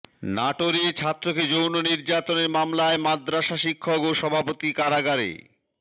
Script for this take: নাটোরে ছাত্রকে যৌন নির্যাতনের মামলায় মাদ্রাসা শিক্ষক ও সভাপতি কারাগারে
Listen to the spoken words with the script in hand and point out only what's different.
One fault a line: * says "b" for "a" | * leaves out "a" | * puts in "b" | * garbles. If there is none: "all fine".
all fine